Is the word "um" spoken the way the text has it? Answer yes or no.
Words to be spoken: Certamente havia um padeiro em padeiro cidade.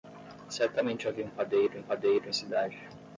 yes